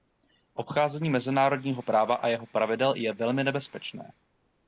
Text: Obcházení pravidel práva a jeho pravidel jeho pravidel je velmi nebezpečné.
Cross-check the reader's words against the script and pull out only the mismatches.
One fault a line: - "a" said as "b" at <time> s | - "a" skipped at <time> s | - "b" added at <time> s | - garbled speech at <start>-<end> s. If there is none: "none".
- "pravidel" said as "mezinárodního" at 1.1 s
- "jeho pravidel" skipped at 2.9 s